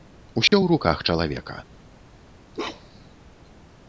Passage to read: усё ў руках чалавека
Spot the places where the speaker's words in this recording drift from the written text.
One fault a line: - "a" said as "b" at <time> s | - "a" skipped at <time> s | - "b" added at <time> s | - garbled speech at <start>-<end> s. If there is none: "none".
none